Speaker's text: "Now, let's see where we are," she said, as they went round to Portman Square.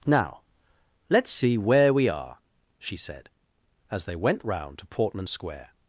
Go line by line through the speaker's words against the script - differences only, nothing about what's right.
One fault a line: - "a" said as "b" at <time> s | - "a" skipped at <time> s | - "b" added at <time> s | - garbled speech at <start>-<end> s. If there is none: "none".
none